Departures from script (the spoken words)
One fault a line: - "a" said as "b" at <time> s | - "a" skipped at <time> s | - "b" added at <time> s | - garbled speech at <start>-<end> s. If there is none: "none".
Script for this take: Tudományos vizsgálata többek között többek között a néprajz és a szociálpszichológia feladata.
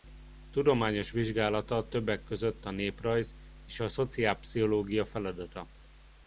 - "többek között" skipped at 2.6 s